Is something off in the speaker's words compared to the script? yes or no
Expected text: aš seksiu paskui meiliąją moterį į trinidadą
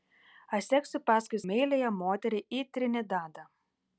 no